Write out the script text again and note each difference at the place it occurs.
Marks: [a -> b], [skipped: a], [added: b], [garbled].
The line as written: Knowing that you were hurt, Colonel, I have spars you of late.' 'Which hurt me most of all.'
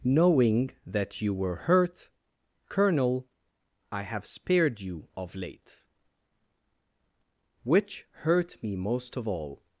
Knowing that you were hurt, Colonel, I have [spars -> spared] you of late.' 'Which hurt me most of all.'